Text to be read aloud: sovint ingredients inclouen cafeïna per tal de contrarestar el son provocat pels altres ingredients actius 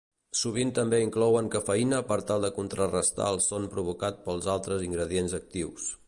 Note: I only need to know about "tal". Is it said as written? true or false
true